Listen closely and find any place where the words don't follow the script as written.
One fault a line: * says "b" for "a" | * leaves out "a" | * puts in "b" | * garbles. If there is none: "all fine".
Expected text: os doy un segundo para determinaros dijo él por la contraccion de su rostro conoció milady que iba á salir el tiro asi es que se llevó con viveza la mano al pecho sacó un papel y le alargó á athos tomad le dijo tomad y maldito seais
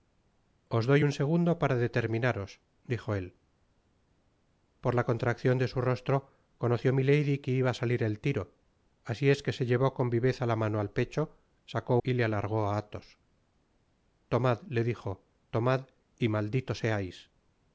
* leaves out "un papel"